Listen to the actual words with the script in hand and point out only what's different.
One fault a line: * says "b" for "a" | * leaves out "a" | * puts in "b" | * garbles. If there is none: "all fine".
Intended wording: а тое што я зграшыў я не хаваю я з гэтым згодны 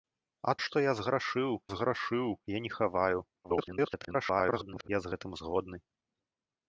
* leaves out "тое"
* puts in "зграшыў"
* garbles